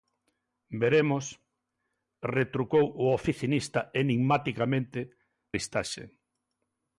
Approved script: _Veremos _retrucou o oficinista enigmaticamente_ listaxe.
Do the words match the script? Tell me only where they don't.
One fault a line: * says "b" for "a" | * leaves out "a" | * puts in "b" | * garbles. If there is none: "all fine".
all fine